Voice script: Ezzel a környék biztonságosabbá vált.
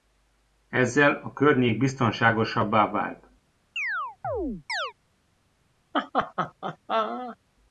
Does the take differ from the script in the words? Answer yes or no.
no